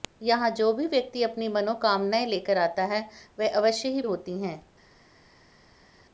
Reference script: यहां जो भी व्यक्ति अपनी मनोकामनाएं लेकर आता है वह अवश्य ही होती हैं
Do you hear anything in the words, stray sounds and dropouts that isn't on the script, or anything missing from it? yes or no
no